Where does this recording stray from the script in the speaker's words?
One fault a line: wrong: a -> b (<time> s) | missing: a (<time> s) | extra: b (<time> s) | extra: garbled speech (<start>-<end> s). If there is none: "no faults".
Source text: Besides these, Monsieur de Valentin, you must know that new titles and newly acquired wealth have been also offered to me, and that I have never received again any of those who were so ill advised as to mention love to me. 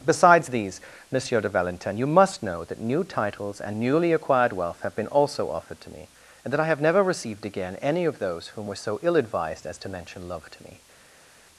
wrong: who -> whom (8.5 s)